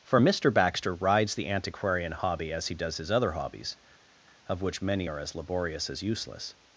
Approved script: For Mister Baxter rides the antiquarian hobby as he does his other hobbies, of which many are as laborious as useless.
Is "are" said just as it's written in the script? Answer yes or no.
yes